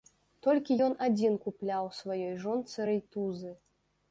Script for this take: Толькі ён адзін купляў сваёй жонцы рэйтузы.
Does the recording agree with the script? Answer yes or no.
yes